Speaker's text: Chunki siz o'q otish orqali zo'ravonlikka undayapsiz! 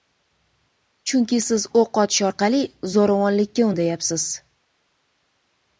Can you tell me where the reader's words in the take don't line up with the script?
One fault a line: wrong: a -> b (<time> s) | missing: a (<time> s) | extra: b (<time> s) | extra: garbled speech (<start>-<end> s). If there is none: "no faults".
no faults